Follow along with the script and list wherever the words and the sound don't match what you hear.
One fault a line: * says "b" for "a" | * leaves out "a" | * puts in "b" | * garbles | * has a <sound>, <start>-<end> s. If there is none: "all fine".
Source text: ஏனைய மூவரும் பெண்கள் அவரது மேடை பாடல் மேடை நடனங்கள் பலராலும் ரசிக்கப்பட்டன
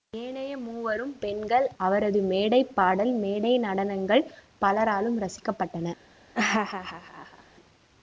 * has a laugh, 6.3-7.4 s